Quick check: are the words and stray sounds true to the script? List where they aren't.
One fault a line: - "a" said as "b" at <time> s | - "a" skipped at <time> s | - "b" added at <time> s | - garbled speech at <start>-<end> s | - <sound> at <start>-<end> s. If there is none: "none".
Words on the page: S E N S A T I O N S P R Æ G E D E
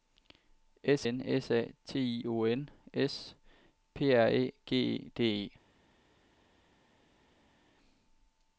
- "E" skipped at 1.1 s